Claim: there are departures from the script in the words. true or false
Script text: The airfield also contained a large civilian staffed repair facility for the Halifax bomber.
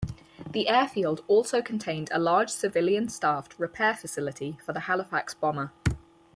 false